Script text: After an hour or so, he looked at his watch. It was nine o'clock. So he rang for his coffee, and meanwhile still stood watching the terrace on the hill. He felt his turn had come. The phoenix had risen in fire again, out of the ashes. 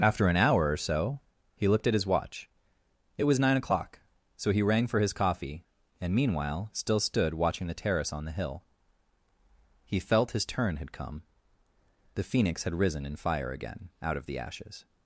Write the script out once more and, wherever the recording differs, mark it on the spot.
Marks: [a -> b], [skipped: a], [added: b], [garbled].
After an hour or so, he looked at his watch. It was nine o'clock. So he rang for his coffee, and meanwhile still stood watching the terrace on the hill. He felt his turn had come. The phoenix had risen in fire again, out of the ashes.